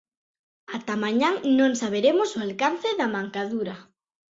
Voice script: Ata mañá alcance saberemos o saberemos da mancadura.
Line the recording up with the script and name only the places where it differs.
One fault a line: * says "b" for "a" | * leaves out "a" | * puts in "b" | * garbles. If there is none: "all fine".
* says "non" for "alcance"
* says "alcance" for "saberemos"